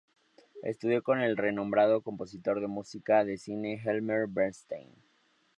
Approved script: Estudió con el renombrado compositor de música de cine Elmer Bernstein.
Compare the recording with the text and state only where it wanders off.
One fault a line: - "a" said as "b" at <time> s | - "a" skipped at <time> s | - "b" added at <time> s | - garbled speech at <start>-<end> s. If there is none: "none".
none